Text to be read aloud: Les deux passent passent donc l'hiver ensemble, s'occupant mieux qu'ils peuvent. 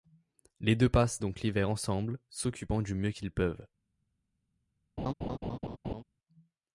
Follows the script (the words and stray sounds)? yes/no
no